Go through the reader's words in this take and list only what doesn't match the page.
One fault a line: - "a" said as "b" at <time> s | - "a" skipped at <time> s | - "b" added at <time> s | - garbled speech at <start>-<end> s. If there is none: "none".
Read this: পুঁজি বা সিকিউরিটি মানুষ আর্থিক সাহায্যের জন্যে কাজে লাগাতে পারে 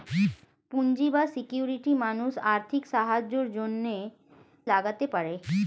- "কাজে" skipped at 4.0 s